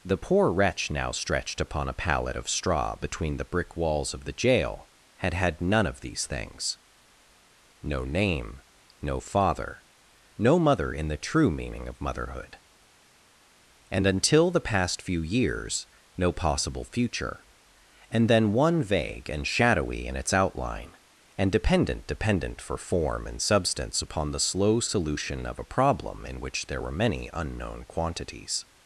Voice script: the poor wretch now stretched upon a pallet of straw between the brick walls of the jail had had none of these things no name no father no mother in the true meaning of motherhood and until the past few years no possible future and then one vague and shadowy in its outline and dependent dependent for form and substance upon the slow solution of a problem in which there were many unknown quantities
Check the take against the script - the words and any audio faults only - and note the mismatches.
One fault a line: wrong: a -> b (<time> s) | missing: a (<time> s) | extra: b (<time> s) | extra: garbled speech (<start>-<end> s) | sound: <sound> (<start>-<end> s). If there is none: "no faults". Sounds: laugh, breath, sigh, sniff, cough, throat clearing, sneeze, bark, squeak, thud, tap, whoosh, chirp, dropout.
no faults